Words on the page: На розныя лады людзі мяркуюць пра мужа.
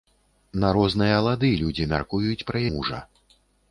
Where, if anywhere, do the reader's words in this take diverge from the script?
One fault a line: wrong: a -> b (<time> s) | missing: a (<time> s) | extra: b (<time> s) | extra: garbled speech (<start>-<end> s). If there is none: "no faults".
no faults